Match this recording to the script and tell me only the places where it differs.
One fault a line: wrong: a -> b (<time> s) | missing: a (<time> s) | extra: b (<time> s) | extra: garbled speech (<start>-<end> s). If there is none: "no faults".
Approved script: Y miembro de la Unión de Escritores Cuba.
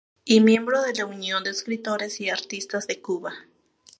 extra: y Artistas de (2.2 s)